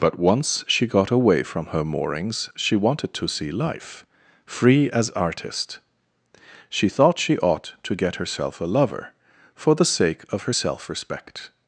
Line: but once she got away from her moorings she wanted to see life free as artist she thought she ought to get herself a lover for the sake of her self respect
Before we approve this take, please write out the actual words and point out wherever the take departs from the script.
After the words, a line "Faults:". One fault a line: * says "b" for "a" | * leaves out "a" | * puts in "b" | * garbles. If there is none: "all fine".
but once she got away from her moorings she wanted to see life free as artist she thought she ought to get herself a lover for the sake of her self respect
Faults:
all fine